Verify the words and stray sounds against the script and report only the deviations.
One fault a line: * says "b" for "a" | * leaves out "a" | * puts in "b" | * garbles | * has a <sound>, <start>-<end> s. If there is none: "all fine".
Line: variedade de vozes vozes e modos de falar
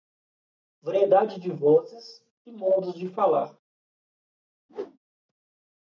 * leaves out "vozes"
* has a whoosh, 4.7-5.0 s